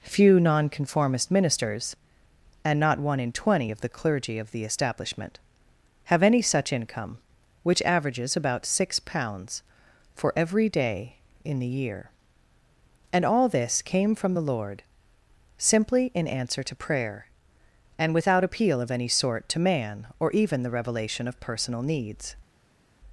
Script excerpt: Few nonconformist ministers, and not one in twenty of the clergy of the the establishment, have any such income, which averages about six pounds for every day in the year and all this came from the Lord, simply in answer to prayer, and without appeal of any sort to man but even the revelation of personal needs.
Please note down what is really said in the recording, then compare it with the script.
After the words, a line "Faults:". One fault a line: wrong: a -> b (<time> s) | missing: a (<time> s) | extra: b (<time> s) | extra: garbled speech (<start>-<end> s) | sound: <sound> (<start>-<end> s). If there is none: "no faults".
Few nonconformist ministers, and not one in twenty of the clergy of the establishment, have any such income, which averages about six pounds for every day in the year and all this came from the Lord, simply in answer to prayer, and without appeal of any sort to man or even the revelation of personal needs.
Faults:
missing: the (4.6 s)
wrong: but -> or (20.2 s)